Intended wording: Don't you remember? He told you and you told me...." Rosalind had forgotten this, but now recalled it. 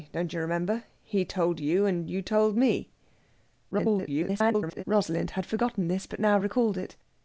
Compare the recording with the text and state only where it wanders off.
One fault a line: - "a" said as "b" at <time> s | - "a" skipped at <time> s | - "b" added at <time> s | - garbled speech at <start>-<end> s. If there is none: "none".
- garbled speech at 3.7-4.8 s